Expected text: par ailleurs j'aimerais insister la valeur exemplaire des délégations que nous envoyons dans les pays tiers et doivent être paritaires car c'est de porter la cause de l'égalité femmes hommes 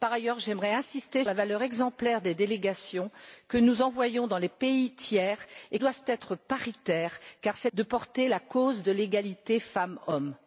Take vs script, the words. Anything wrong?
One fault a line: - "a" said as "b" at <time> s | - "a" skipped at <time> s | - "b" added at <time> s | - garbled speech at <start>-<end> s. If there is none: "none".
none